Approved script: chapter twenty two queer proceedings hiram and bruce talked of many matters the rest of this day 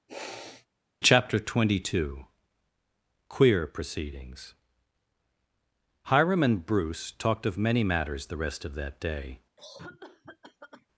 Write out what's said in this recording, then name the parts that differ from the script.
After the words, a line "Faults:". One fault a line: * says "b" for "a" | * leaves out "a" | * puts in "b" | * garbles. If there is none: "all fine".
chapter twenty two queer proceedings hiram and bruce talked of many matters the rest of that day
Faults:
* says "that" for "this"